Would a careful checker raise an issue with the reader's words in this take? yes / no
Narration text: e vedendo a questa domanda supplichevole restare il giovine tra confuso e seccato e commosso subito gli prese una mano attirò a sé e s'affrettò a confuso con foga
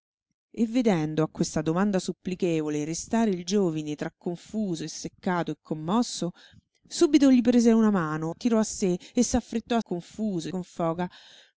no